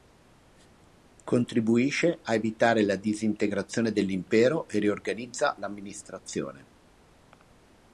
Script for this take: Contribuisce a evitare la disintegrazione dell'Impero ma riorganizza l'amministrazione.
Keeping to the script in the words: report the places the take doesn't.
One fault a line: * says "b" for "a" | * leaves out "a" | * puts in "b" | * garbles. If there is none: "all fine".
* says "e" for "ma"